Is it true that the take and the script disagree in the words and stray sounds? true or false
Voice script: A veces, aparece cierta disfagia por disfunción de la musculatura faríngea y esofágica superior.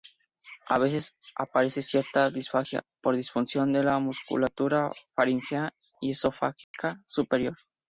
true